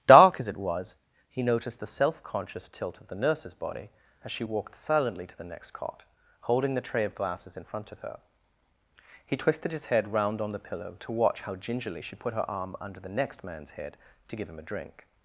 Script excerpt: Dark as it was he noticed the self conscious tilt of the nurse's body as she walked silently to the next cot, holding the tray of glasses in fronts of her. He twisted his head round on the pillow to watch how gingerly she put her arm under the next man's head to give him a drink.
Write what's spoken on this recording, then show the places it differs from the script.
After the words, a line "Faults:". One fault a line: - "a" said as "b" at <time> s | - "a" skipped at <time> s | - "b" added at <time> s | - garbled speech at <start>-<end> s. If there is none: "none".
Dark as it was he noticed the self conscious tilt of the nurse's body as she walked silently to the next cot, holding the tray of glasses in front of her. He twisted his head round on the pillow to watch how gingerly she put her arm under the next man's head to give him a drink.
Faults:
- "fronts" said as "front" at 7.6 s